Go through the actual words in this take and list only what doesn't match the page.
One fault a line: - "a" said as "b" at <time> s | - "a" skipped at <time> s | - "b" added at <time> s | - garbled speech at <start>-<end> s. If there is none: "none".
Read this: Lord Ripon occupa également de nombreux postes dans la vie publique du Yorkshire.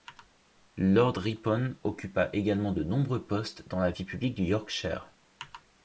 none